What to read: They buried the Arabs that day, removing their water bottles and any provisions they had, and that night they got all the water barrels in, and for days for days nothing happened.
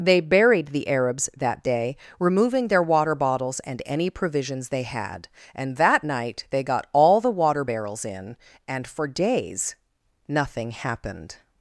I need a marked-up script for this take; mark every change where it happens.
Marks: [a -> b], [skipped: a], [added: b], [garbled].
They buried the Arabs that day, removing their water bottles and any provisions they had, and that night they got all the water barrels in, and for days [skipped: for days] nothing happened.